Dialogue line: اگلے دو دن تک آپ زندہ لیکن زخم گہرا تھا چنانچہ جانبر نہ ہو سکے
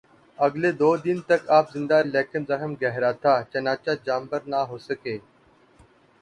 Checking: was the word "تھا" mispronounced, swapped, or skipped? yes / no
no